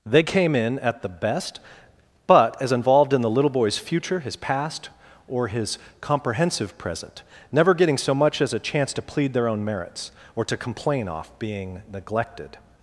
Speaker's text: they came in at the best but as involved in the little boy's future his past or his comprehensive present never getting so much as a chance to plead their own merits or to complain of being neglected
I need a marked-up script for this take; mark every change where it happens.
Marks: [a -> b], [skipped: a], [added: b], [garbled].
they came in at the best but as involved in the little boy's future his past or his comprehensive present never getting so much as a chance to plead their own merits or to complain [of -> off] being neglected